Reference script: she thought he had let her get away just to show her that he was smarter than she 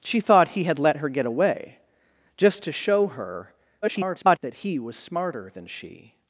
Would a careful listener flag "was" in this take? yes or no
no